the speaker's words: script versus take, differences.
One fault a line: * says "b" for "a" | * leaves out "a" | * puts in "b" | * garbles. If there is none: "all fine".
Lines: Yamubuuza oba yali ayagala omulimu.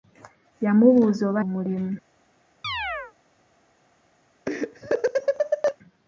* leaves out "yali ayagala"